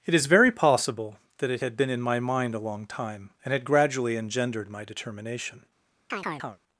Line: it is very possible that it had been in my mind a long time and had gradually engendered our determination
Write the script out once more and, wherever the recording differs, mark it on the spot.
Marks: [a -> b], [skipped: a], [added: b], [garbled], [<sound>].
it is very possible that it had been in my mind a long time and had gradually engendered [our -> my] determination [chirp]